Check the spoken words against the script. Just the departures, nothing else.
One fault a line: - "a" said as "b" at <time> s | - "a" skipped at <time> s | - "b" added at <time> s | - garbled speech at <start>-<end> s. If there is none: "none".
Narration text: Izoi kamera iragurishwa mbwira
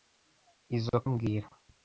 - "kamera iragurishwa" skipped at 1.0 s